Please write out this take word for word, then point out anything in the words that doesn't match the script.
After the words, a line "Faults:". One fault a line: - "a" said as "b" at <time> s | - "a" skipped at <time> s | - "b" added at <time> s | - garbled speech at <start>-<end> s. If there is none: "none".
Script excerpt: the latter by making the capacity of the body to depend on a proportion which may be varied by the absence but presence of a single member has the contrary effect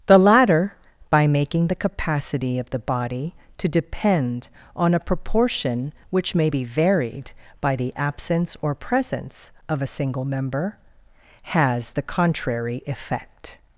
the latter by making the capacity of the body to depend on a proportion which may be varied by the absence or presence of a single member has the contrary effect
Faults:
- "but" said as "or" at 8.6 s